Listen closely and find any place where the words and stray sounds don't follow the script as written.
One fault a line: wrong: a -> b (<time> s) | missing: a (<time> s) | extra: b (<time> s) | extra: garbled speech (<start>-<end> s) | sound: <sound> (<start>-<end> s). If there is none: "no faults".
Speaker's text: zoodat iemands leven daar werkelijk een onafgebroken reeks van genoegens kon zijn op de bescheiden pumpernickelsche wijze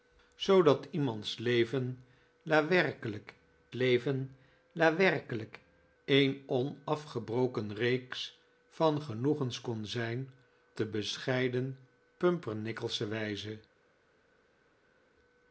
extra: leven daar werkelijk (3.7 s)
missing: op (10.3 s)